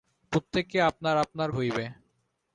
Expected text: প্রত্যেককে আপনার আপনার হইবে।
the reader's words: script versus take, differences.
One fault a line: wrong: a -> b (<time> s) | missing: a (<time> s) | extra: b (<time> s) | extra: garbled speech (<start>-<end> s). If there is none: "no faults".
no faults